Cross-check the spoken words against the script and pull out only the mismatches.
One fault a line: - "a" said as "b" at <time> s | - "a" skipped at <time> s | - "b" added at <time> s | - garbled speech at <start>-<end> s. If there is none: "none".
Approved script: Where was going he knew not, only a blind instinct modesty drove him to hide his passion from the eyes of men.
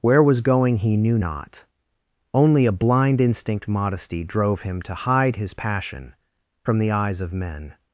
none